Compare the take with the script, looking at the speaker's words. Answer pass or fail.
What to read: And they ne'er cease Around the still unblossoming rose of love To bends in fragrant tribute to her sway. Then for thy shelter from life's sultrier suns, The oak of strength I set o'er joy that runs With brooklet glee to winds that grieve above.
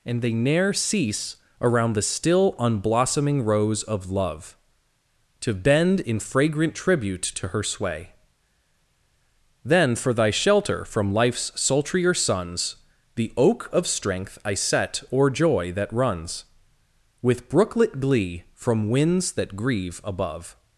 fail